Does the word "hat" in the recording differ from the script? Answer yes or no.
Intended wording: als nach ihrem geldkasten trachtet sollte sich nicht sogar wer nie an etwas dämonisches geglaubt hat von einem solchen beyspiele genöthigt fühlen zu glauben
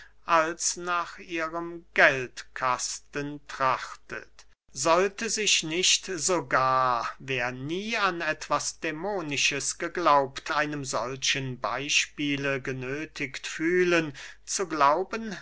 yes